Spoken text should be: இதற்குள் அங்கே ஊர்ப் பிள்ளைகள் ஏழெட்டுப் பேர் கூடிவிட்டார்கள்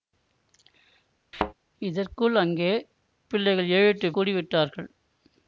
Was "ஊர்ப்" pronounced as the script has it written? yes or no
no